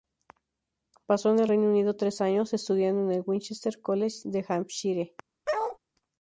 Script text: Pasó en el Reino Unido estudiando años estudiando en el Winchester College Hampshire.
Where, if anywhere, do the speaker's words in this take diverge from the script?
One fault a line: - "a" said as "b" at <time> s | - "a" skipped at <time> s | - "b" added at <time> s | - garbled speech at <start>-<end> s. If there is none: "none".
- "estudiando" said as "tres" at 2.0 s
- "de" added at 4.2 s